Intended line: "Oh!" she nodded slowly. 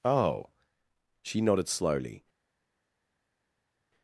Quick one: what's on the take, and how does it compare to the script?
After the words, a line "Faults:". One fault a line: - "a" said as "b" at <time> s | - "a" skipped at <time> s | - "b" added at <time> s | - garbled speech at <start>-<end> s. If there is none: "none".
"Oh!" she nodded slowly.
Faults:
none